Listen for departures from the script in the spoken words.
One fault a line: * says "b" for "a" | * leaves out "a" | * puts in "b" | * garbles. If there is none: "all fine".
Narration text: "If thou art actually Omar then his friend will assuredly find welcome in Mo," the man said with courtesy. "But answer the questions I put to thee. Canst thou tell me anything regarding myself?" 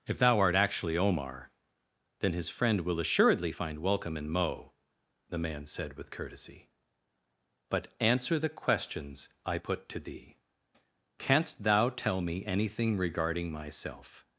all fine